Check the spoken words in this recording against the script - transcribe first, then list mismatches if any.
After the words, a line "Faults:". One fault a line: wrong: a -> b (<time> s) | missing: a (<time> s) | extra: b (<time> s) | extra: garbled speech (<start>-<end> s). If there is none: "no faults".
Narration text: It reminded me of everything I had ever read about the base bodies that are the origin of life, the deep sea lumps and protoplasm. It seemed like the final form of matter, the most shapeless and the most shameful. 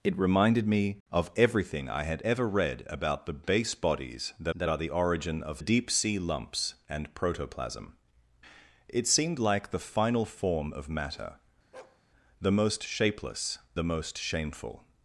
It reminded me of everything I had ever read about the base bodies that that are the origin of deep sea lumps and protoplasm. It seemed like the final form of matter, the most shapeless the most shameful.
Faults:
extra: that (4.5 s)
missing: life the (5.6 s)
missing: and (13.6 s)